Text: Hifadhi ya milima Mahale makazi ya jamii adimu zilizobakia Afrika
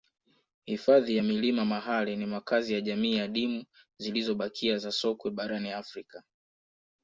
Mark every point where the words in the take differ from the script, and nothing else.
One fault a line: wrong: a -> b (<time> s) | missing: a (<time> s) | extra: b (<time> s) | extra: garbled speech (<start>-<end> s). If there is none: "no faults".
extra: ni (2.2 s)
extra: za sokwe barani (4.8 s)